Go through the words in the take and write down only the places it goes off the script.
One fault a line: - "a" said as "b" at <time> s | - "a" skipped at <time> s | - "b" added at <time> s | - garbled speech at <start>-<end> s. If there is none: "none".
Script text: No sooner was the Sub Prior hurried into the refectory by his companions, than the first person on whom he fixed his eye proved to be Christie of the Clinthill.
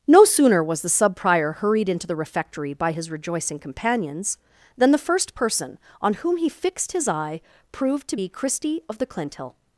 - "rejoicing" added at 3.1 s